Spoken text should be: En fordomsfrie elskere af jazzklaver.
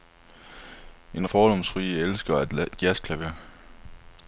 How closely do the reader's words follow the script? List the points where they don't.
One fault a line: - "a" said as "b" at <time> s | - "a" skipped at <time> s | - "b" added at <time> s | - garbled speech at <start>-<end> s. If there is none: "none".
none